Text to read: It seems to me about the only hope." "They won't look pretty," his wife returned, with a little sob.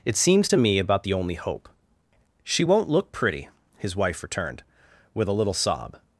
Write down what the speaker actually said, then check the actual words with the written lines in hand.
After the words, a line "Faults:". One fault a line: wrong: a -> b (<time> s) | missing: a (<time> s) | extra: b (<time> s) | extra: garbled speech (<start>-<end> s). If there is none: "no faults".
It seems to me about the only hope." "She won't look pretty," his wife returned, with a little sob.
Faults:
wrong: They -> She (2.4 s)